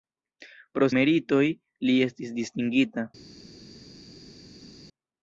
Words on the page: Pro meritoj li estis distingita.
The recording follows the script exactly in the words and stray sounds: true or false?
true